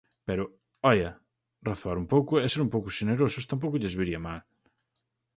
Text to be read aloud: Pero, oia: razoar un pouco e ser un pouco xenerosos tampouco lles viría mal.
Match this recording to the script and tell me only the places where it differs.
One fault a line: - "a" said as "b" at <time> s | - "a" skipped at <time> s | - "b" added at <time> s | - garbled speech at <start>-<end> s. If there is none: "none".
none